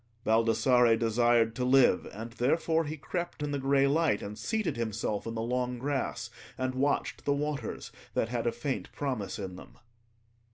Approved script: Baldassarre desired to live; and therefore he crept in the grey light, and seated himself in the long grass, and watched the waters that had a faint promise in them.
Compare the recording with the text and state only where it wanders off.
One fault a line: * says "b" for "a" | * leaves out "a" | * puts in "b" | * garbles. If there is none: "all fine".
all fine